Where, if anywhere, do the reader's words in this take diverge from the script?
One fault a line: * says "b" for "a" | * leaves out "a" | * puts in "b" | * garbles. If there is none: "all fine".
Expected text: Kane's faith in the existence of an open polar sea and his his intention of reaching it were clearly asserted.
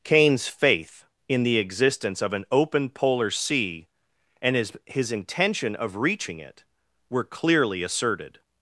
all fine